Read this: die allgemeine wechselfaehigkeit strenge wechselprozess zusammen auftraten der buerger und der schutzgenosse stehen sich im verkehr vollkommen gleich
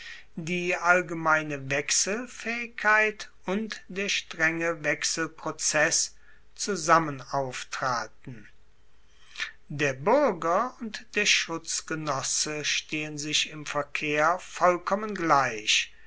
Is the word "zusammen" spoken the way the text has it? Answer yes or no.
yes